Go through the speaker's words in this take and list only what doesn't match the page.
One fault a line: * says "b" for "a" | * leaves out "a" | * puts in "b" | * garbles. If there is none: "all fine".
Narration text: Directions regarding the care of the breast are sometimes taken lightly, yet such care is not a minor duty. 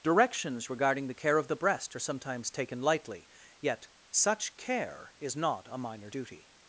all fine